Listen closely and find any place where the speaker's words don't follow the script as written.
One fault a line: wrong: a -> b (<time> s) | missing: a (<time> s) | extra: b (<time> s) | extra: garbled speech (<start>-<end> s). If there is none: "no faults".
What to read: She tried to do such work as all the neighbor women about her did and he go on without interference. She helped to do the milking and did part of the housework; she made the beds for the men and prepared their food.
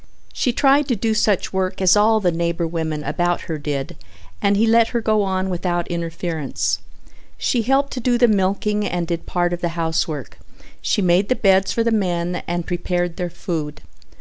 extra: let her (4.7 s)